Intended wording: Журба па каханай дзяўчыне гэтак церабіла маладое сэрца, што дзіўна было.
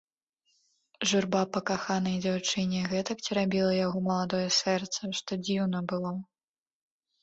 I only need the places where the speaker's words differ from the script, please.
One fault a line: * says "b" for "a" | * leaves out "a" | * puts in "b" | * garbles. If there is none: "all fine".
* puts in "яго"